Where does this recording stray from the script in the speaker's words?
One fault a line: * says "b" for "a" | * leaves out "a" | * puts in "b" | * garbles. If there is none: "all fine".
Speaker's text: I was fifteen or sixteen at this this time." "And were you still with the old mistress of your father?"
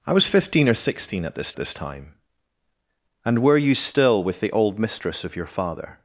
all fine